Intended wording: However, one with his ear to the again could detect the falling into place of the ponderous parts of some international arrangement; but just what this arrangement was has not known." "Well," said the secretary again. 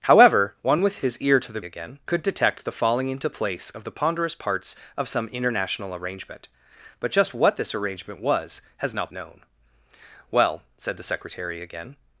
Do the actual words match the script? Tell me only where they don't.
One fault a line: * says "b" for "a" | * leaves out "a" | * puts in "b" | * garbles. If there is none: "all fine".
all fine